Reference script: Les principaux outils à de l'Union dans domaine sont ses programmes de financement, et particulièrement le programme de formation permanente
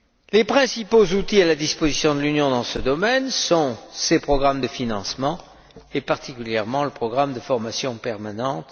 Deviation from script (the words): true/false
true